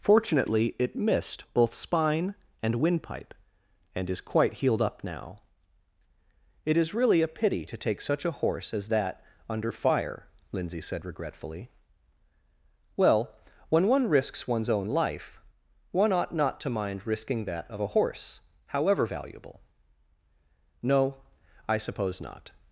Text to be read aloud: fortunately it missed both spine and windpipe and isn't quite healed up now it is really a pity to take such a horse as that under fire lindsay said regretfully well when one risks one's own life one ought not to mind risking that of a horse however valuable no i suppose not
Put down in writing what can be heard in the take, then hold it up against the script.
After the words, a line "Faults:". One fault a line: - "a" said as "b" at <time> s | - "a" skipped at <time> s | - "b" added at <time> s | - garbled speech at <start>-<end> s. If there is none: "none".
fortunately it missed both spine and windpipe and is quite healed up now it is really a pity to take such a horse as that under fire lindsay said regretfully well when one risks one's own life one ought not to mind risking that of a horse however valuable no i suppose not
Faults:
- "isn't" said as "is" at 4.1 s